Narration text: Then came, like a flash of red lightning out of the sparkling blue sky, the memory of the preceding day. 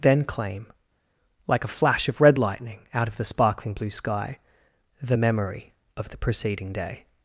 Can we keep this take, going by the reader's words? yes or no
no